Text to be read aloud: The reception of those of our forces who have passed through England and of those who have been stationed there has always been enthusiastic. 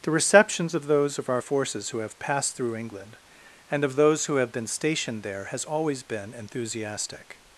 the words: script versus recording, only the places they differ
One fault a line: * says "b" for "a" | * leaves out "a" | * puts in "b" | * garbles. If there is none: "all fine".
* says "receptions" for "reception"